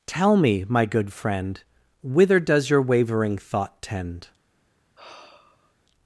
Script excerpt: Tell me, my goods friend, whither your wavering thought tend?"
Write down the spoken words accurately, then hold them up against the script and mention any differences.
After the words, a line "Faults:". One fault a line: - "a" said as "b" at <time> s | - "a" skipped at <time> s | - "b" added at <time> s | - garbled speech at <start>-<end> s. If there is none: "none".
Tell me, my good friend, whither does your wavering thought tend?"
Faults:
- "goods" said as "good" at 0.8 s
- "does" added at 2.4 s